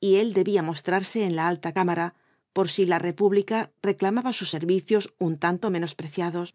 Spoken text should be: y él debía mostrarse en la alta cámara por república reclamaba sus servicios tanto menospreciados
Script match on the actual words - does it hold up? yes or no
no